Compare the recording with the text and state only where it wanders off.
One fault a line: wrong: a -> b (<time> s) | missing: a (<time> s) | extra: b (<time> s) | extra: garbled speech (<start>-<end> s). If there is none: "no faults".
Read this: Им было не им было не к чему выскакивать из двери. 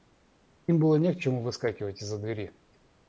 missing: им было не (1.1 s)
extra: за (2.1 s)